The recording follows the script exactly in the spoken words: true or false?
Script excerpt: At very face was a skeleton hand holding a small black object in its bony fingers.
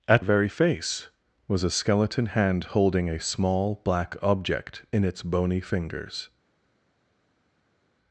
true